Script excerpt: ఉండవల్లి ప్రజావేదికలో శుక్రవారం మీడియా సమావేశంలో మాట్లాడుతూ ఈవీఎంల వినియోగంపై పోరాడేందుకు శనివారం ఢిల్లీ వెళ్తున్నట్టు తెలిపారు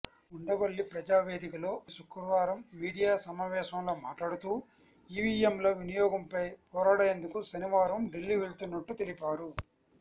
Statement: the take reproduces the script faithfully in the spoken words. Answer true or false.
true